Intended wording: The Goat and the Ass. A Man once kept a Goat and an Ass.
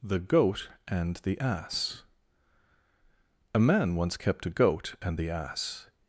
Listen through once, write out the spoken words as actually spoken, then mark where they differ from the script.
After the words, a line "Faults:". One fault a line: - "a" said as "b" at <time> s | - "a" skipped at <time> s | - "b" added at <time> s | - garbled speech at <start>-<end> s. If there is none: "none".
The Goat and the Ass. A Man once kept a Goat and the Ass.
Faults:
- "an" said as "the" at 5.2 s